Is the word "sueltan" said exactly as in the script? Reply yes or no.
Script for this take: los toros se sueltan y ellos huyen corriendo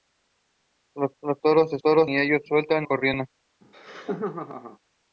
no